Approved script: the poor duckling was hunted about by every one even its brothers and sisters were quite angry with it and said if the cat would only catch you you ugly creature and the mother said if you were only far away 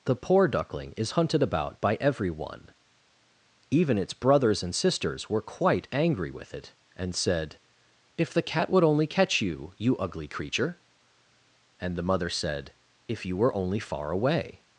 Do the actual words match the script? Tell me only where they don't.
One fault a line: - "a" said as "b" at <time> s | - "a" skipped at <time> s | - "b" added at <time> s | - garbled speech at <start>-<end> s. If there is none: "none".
- "was" said as "is" at 1.0 s